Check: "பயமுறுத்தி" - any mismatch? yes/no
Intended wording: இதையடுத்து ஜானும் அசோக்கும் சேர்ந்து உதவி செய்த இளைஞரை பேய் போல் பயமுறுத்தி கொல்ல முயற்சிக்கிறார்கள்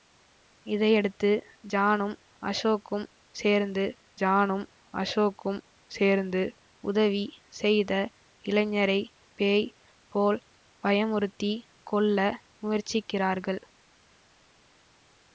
no